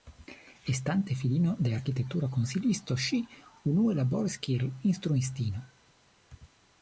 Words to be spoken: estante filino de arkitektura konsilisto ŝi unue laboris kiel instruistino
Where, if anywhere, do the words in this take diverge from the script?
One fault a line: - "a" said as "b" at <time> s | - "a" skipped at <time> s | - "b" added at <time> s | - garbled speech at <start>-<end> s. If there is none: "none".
none